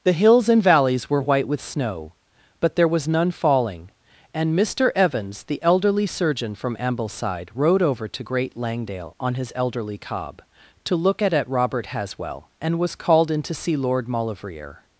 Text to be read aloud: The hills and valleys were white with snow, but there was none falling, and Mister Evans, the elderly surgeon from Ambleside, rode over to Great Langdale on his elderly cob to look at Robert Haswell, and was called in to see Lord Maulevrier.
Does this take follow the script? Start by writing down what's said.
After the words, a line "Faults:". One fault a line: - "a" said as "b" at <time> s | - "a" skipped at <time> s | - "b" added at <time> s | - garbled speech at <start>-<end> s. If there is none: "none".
The hills and valleys were white with snow, but there was none falling, and Mister Evans, the elderly surgeon from Ambleside, rode over to Great Langdale on his elderly cob to look at at Robert Haswell, and was called in to see Lord Maulevrier.
Faults:
- "at" added at 11.3 s